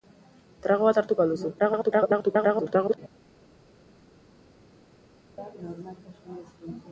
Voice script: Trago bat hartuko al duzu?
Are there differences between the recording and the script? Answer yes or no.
yes